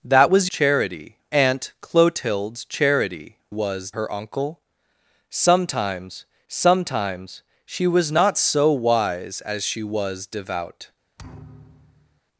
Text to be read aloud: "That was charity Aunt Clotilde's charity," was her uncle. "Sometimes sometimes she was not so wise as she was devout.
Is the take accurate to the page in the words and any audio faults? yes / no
no